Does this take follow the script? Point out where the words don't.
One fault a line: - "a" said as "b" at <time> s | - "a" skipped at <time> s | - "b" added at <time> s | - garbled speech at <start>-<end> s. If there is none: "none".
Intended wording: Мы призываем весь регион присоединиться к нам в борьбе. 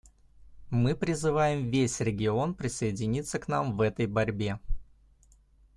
- "этой" added at 3.8 s